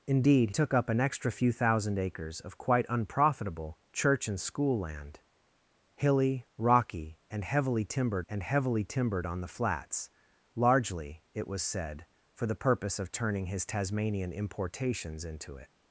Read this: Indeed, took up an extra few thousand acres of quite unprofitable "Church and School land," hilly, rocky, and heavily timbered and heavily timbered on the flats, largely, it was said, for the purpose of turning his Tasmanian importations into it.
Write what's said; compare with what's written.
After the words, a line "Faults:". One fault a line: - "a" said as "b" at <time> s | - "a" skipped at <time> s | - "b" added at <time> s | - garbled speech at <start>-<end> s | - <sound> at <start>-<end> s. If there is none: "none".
Indeed, took up an extra few thousand acres of quite unprofitable "Church and School land," hilly, rocky, and heavily timbered and heavily timbered on the flats, largely, it was said, for the purpose of turning his Tasmanian importations into it.
Faults:
none